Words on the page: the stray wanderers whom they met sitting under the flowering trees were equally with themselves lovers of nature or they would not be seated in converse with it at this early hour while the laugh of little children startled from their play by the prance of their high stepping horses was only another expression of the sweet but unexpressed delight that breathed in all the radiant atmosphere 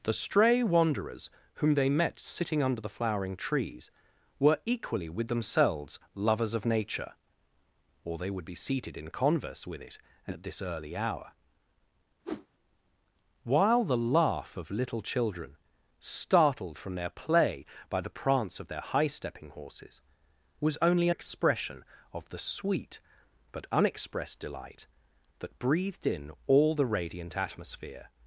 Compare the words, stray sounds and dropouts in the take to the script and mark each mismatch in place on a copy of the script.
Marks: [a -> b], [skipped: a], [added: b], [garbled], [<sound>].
the stray wanderers whom they met sitting under the flowering trees were equally with themselves lovers of nature or they would [skipped: not] be seated in converse with it at this early hour [whoosh] while the laugh of little children startled from their play by the prance of their high stepping horses was only [skipped: another] expression of the sweet but unexpressed delight that breathed in all the radiant atmosphere